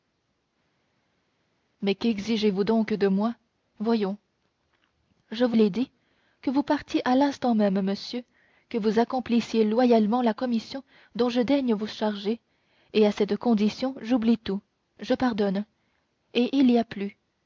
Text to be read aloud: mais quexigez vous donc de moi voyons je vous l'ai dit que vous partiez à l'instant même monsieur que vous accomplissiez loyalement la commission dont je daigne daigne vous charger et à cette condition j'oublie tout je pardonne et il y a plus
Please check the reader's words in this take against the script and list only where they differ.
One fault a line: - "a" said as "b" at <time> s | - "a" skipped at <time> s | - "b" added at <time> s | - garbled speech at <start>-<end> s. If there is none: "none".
- "daigne" skipped at 11.7 s